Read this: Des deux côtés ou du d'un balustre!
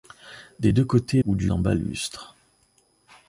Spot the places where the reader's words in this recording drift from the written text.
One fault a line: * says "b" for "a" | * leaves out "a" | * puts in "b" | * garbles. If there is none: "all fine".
all fine